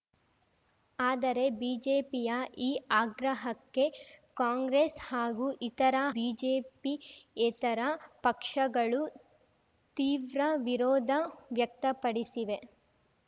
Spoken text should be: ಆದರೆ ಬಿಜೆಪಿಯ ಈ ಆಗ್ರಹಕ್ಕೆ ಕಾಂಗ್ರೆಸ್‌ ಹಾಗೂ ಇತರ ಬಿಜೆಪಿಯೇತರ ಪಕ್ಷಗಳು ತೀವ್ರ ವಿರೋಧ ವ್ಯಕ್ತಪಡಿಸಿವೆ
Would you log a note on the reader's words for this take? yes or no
no